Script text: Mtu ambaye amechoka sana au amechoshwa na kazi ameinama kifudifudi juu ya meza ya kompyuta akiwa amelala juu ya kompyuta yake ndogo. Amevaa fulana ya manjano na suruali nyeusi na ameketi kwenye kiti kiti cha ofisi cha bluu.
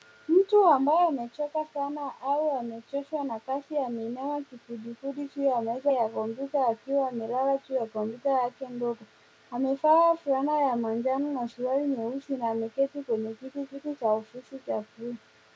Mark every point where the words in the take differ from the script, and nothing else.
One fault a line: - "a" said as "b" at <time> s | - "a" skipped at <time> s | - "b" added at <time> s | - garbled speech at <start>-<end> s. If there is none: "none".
none